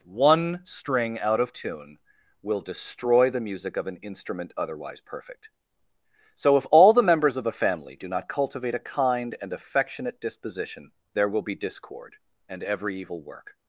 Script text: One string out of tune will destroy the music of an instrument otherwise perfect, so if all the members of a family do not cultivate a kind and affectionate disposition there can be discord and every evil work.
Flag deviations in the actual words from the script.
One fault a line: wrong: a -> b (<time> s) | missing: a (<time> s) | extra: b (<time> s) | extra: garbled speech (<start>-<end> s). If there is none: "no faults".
wrong: can -> will (11.3 s)